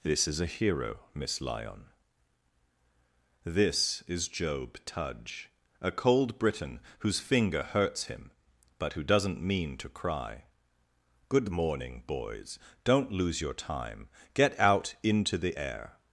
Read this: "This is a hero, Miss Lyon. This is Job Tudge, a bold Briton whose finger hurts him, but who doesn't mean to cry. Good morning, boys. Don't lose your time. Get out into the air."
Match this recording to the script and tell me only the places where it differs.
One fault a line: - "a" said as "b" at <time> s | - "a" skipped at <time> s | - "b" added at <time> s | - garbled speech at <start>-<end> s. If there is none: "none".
- "bold" said as "cold" at 5.9 s